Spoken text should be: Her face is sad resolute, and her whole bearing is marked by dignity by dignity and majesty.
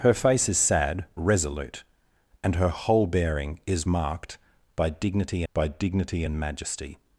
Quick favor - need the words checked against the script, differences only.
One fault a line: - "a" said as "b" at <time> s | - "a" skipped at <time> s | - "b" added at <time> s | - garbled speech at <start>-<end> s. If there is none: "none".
none